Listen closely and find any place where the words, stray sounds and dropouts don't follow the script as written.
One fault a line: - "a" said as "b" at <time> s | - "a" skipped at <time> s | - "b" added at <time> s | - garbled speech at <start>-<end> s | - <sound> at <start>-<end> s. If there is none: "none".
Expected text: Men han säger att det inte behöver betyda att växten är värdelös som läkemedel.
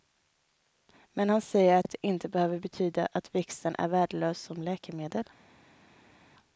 - "att" added at 1.8 s